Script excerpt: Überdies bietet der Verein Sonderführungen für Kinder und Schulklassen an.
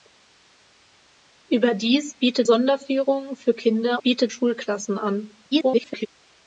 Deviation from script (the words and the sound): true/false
true